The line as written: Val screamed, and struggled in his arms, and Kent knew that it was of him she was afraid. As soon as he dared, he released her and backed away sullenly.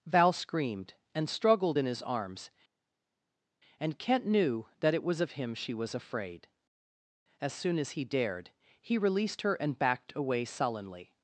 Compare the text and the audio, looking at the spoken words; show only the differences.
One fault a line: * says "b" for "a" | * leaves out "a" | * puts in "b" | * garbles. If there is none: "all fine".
all fine